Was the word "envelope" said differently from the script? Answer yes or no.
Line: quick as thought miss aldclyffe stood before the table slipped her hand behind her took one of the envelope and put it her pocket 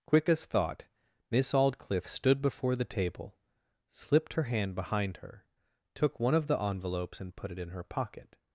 yes